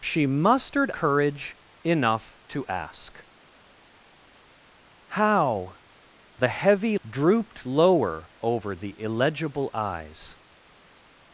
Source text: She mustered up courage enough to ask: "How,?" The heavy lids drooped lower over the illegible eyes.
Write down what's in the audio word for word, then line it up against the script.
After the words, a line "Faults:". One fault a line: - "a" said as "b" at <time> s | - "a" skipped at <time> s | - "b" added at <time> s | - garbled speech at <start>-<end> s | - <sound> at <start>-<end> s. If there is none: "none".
She mustered courage enough to ask: "How,?" The heavy drooped lower over the illegible eyes.
Faults:
- "up" skipped at 0.9 s
- "lids" skipped at 7.0 s